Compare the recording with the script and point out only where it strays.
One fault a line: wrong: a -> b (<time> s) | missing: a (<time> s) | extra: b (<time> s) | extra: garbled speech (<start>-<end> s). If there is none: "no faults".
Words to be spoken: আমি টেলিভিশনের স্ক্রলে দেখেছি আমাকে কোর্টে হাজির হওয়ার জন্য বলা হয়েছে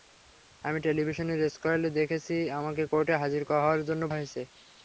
missing: বলা (4.0 s)